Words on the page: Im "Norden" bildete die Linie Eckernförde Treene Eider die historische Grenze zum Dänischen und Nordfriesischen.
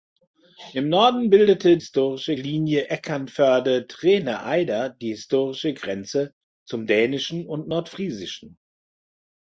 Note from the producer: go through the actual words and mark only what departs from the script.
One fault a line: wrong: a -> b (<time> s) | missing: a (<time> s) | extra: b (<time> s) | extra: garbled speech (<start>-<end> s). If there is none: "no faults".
wrong: die -> historische (1.8 s)